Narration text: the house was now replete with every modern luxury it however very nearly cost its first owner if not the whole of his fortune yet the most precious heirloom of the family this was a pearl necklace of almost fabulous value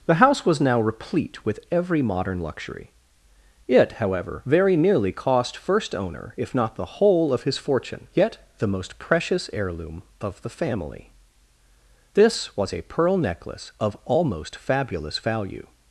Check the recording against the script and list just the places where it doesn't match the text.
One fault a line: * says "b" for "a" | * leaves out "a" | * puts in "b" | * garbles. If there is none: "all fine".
* leaves out "its"